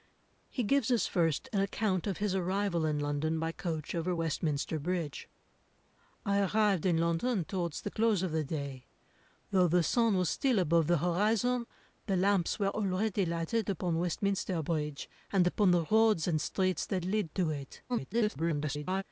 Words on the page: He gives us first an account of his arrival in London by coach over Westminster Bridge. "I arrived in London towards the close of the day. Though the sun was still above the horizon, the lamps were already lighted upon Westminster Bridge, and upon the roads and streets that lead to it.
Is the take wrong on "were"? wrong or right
right